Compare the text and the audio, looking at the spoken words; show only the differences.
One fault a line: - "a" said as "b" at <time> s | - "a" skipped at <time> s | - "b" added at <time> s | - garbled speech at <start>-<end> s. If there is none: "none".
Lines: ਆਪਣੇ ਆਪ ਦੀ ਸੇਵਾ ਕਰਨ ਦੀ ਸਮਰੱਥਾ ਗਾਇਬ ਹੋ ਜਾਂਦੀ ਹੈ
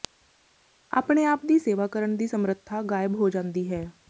none